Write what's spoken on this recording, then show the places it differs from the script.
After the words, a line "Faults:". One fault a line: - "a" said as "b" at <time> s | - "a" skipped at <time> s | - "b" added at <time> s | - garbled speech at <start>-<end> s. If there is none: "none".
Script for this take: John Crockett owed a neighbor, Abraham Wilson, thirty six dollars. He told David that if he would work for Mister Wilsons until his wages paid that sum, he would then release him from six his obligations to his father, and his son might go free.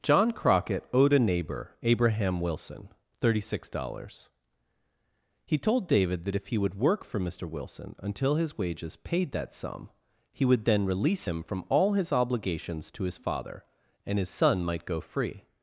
John Crockett owed a neighbor, Abraham Wilson, thirty six dollars. He told David that if he would work for Mister Wilson until his wages paid that sum, he would then release him from all his obligations to his father, and his son might go free.
Faults:
- "Wilsons" said as "Wilson" at 7.5 s
- "six" said as "all" at 11.7 s